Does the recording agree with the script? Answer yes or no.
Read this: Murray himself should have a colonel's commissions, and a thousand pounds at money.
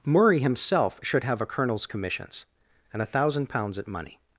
yes